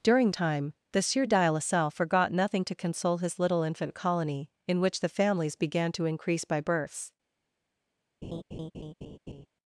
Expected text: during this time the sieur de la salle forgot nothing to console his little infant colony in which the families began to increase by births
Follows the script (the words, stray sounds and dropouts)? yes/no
no